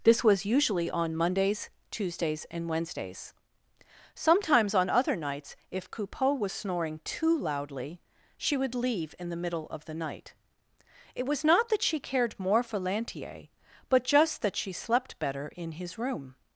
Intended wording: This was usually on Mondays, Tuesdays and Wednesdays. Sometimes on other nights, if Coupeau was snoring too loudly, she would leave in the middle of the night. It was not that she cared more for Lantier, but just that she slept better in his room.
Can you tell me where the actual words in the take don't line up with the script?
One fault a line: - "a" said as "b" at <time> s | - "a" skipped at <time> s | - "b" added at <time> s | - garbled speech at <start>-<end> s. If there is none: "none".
none